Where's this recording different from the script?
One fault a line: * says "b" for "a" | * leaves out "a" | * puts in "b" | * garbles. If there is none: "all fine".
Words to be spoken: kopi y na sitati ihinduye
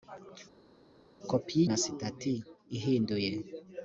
all fine